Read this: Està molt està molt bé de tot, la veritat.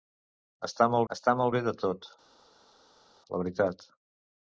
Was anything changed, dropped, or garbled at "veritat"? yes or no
no